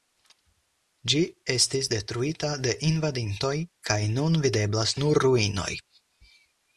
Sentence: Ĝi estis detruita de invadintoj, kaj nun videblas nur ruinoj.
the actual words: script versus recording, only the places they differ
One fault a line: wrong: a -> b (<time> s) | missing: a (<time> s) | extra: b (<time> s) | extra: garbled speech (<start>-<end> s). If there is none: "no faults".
no faults